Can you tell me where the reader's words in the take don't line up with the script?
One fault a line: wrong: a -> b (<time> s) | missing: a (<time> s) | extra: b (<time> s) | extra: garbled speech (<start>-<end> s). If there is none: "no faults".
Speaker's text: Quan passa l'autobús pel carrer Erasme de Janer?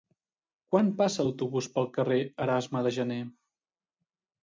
no faults